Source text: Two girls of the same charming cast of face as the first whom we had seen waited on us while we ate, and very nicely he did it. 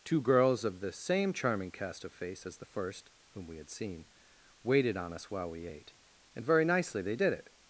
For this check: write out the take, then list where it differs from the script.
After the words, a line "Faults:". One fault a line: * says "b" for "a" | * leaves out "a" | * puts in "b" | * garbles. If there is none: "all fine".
Two girls of the same charming cast of face as the first whom we had seen waited on us while we ate, and very nicely they did it.
Faults:
* says "they" for "he"